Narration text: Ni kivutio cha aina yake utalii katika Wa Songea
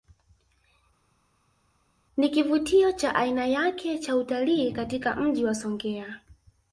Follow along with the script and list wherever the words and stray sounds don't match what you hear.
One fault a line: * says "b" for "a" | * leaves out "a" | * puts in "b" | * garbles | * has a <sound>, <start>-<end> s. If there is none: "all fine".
* puts in "cha"
* puts in "Mji"